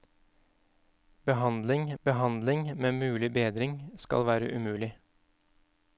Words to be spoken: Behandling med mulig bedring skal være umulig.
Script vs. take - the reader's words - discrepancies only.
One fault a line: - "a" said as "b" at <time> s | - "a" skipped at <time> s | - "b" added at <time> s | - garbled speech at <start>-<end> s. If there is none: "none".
- "behandling" added at 2.0 s